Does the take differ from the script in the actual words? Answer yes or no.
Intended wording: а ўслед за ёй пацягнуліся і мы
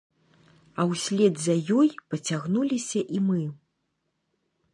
no